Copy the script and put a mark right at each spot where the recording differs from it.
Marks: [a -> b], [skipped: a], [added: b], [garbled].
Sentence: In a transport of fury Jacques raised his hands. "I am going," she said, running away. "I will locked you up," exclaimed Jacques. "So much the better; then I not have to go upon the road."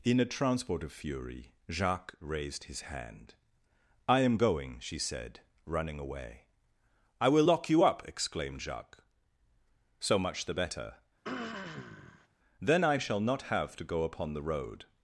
In a transport of fury Jacques raised his [hands. -> hand] "I am going," she said, running away. "I will [locked -> lock] you up," exclaimed Jacques. "So much the better; then I [added: shall] not have to go upon the road."